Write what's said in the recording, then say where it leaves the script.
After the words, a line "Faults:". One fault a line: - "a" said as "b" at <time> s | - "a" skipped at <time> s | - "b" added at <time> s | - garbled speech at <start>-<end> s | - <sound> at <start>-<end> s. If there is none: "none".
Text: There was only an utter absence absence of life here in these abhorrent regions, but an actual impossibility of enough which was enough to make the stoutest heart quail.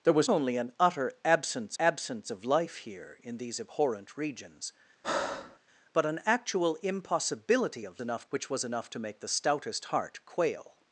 There was only an utter absence absence of life here in these abhorrent regions, but an actual impossibility of enough which was enough to make the stoutest heart quail.
Faults:
- breath at 5.0-5.6 s